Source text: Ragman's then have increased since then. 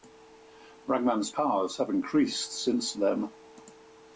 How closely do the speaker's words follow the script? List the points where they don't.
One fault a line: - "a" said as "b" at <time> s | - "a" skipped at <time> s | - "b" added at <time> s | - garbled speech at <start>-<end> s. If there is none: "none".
- "then" said as "powers" at 1.3 s